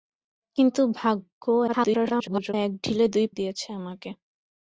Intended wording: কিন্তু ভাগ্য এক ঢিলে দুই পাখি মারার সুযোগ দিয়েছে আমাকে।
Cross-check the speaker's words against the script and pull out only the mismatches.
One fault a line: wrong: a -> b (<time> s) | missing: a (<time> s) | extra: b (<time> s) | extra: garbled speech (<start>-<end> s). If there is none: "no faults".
extra: garbled speech (1.7-2.5 s)
missing: পাখি মারার সুযোগ (3.3 s)